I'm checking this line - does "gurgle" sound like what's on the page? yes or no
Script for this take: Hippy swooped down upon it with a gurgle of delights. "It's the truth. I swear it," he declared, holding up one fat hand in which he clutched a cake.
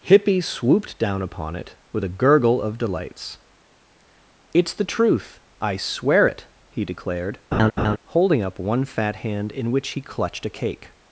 yes